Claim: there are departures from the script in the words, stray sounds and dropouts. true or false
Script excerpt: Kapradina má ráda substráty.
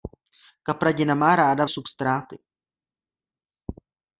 false